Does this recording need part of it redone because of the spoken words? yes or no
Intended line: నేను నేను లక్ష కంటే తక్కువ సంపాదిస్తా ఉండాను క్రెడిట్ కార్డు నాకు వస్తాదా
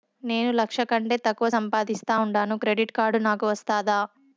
yes